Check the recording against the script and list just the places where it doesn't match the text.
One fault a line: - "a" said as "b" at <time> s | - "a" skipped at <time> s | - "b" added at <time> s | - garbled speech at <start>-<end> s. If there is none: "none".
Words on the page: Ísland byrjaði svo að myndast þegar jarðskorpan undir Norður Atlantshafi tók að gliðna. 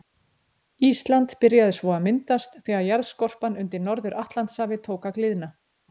none